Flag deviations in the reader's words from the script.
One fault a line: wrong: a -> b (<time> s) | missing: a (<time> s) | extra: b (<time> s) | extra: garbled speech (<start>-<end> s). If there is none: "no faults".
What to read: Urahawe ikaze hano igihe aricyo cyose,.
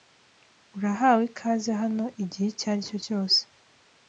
extra: icyo (2.5 s)